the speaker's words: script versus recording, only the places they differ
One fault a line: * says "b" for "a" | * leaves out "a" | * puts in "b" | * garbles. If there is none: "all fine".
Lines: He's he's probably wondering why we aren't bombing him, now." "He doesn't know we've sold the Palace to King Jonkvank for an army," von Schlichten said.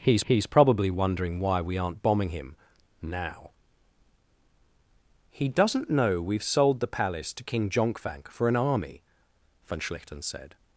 all fine